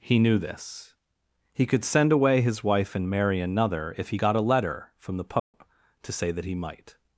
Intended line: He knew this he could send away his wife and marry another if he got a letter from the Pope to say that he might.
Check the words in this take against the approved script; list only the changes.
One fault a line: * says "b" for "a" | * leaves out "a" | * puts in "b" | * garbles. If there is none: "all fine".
all fine